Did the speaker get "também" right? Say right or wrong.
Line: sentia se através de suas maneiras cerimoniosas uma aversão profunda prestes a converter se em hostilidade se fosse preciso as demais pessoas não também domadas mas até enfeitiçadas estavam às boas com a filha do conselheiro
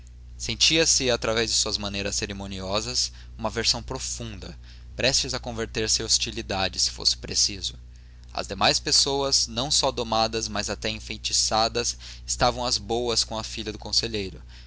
wrong